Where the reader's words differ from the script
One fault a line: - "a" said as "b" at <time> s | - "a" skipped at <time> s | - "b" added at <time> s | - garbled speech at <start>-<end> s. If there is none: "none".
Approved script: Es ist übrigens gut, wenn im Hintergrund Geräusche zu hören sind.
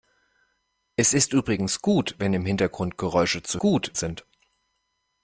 - "hören" said as "gut" at 3.6 s